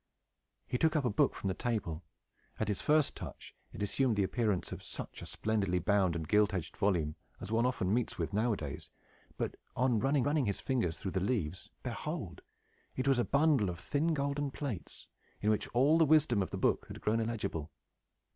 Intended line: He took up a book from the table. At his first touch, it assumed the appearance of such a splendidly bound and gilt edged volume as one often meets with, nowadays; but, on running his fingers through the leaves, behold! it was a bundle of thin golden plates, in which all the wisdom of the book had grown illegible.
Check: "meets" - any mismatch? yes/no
no